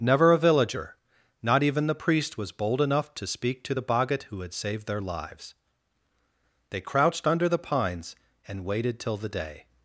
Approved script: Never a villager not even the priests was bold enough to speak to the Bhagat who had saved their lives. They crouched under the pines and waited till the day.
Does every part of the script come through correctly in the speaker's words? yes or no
no